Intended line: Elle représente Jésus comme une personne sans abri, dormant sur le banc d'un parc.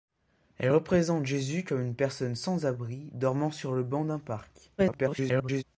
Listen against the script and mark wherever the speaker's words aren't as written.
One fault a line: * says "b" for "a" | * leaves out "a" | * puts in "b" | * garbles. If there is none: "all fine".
* garbles